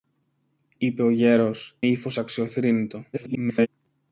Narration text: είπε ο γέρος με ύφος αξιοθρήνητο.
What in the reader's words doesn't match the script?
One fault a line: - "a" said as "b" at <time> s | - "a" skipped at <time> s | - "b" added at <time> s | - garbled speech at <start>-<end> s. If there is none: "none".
- "με" skipped at 1.8 s
- garbled speech at 3.1-3.7 s